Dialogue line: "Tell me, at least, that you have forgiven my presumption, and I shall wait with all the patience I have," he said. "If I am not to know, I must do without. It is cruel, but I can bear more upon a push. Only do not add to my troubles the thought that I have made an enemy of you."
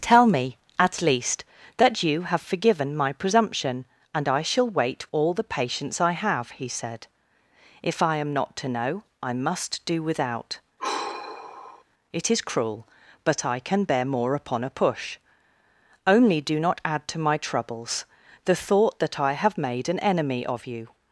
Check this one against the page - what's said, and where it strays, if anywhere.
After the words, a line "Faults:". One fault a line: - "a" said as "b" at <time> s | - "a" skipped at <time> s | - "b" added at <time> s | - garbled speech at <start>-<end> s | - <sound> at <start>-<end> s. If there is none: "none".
"Tell me, at least, that you have forgiven my presumption, and I shall wait all the patience I have," he said. "If I am not to know, I must do without. It is cruel, but I can bear more upon a push. Only do not add to my troubles the thought that I have made an enemy of you."
Faults:
- "with" skipped at 5.1 s
- sigh at 10.8-11.8 s